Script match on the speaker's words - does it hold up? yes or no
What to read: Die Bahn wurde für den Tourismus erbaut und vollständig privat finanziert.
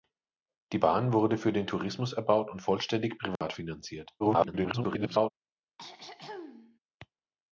no